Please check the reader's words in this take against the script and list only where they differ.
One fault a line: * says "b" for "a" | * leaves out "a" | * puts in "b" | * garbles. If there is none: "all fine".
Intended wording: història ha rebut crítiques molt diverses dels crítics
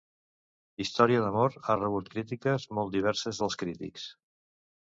* puts in "d'amor"